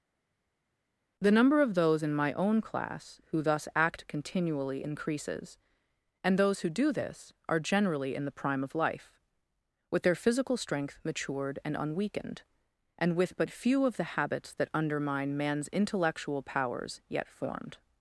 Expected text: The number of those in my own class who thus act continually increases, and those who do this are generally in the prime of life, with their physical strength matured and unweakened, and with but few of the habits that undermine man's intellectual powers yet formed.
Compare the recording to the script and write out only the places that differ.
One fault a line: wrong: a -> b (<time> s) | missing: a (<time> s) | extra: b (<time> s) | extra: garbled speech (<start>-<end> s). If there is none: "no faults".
no faults